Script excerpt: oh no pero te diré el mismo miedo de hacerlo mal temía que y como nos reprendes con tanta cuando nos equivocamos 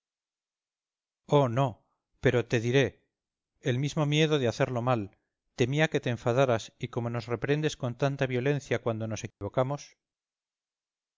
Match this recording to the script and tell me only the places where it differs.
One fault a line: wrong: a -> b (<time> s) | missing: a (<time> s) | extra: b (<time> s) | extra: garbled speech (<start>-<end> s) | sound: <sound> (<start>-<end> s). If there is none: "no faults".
extra: te enfadaras (6.0 s)
extra: violencia (8.2 s)
sound: dropout (9.3-9.4 s)